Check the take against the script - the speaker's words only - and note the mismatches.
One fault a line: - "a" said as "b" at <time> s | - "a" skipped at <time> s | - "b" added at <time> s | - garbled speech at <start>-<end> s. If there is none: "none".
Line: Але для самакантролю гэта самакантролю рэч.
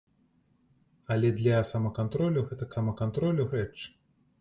none